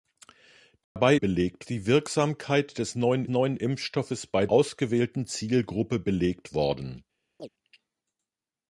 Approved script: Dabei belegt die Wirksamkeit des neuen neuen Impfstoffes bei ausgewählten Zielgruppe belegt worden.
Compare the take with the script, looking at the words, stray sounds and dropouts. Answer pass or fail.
fail